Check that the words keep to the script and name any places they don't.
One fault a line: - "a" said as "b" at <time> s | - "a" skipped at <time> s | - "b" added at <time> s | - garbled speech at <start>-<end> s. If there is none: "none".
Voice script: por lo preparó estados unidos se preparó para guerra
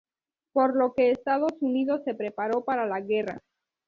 - "preparó" said as "que" at 0.9 s
- "la" added at 2.9 s